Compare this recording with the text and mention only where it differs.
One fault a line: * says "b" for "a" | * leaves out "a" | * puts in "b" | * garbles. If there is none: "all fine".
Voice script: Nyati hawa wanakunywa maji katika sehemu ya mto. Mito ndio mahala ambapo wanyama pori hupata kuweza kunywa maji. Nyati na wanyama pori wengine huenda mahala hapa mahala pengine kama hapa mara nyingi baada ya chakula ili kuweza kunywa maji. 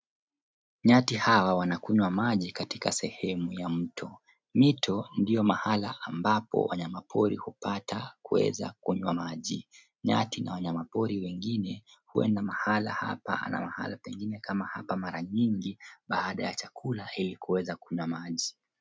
* puts in "na"